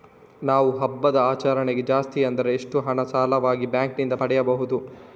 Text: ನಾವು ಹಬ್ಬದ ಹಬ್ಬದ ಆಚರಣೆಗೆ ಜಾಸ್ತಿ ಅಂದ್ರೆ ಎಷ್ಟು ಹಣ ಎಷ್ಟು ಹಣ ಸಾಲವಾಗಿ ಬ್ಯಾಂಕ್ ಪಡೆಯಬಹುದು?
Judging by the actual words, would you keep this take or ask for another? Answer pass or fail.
fail